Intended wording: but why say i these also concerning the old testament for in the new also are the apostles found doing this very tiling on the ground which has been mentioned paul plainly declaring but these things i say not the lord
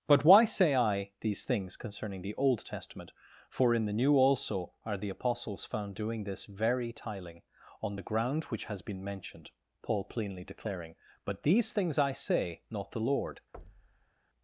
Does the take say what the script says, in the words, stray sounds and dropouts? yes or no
no